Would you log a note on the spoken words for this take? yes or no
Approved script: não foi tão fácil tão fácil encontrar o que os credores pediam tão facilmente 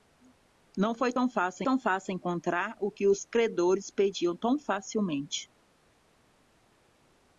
no